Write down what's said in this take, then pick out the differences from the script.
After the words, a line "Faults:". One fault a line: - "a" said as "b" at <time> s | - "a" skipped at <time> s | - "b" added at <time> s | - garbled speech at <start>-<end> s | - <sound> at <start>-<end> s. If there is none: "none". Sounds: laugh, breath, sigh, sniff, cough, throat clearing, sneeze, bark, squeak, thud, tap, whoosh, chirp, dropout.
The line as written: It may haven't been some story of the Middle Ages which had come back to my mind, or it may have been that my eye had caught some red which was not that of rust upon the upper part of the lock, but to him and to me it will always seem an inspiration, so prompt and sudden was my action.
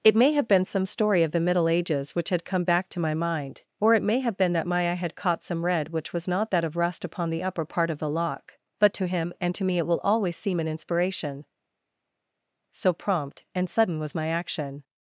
It may have been some story of the Middle Ages which had come back to my mind, or it may have been that my eye had caught some red which was not that of rust upon the upper part of the lock, but to him and to me it will always seem an inspiration, so prompt and sudden was my action.
Faults:
- "haven't" said as "have" at 0.3 s